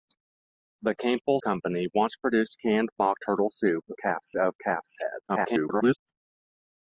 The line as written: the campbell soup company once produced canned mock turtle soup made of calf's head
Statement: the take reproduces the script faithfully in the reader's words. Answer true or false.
false